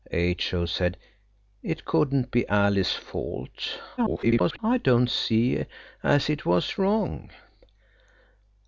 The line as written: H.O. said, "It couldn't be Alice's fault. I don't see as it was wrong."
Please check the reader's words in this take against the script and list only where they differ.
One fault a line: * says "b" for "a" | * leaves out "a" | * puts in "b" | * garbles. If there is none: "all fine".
* garbles